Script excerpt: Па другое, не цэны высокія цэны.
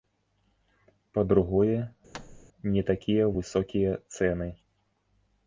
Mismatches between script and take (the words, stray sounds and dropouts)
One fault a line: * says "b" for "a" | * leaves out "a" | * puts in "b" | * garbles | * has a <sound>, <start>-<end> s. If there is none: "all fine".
* has a thud, 2.1-2.5 s
* says "такія" for "цэны"